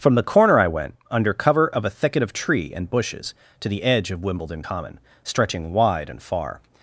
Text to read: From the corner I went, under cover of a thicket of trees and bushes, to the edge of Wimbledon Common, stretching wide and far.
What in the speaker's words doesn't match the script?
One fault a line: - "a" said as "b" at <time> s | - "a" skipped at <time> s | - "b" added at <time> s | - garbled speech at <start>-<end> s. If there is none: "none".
- "trees" said as "tree" at 2.3 s